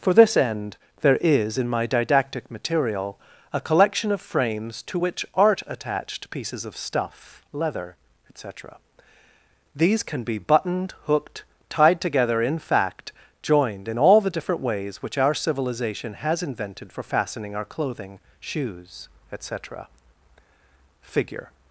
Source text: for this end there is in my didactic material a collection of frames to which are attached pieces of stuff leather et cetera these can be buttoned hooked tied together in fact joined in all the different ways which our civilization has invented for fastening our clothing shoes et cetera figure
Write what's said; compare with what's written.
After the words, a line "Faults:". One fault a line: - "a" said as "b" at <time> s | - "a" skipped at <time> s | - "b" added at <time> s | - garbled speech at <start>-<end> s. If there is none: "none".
for this end there is in my didactic material a collection of frames to which art attached pieces of stuff leather et cetera these can be buttoned hooked tied together in fact joined in all the different ways which our civilization has invented for fastening our clothing shoes et cetera figure
Faults:
- "are" said as "art" at 5.3 s